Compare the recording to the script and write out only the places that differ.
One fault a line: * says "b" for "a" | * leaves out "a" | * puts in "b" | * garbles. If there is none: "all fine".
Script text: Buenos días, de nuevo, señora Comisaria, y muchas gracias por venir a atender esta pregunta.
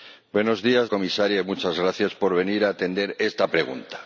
* leaves out "de nuevo señora"